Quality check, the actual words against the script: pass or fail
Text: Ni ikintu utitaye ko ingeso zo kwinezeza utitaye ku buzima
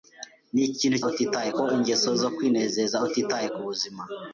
pass